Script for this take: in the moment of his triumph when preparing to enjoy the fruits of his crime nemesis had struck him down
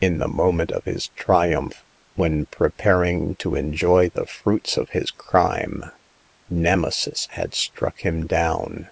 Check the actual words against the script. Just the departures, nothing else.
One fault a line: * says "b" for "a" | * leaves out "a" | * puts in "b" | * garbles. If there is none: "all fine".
all fine